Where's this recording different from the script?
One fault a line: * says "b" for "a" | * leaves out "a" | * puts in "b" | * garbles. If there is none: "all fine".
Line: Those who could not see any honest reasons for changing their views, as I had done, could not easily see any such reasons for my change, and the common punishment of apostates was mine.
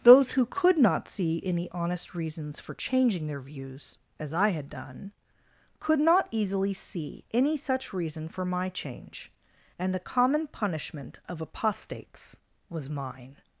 * says "reason" for "reasons"